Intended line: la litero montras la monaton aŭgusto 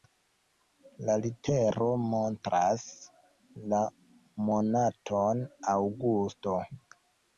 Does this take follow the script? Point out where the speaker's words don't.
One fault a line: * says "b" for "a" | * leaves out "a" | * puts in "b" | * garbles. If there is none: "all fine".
all fine